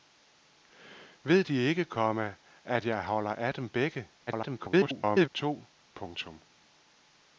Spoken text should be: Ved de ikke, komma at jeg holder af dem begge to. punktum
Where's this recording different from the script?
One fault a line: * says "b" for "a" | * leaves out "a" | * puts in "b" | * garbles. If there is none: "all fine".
* garbles